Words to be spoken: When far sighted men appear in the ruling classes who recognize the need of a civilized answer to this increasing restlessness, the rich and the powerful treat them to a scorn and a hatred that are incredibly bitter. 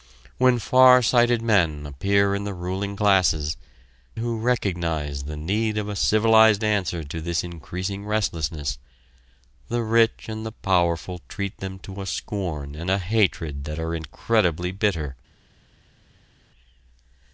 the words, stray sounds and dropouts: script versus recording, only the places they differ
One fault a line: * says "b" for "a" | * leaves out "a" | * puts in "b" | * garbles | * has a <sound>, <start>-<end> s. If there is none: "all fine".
all fine